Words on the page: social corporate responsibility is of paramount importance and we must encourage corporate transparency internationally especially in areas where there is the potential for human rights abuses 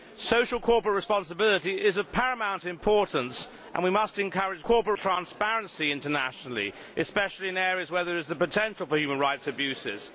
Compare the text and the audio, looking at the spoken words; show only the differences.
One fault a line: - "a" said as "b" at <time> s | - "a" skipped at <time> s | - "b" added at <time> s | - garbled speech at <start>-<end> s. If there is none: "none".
none